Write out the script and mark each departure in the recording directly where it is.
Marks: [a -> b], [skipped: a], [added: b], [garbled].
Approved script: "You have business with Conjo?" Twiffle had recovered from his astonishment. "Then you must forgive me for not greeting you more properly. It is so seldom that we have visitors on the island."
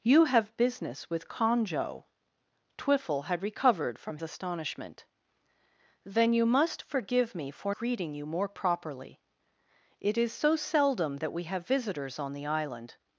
"You have business with Conjo?" Twiffle had recovered from [skipped: his] astonishment. "Then you must forgive me for [skipped: not] greeting you more properly. It is so seldom that we have visitors on the island."